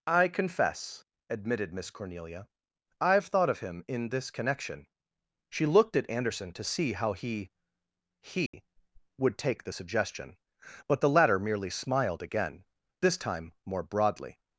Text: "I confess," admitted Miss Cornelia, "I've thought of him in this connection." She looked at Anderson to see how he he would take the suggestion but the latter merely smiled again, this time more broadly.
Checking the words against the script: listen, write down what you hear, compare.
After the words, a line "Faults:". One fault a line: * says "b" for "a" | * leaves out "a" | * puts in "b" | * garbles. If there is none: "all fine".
"I confess," admitted Miss Cornelia, "I've thought of him in this connection." She looked at Anderson to see how he he would take the suggestion but the latter merely smiled again, this time more broadly.
Faults:
all fine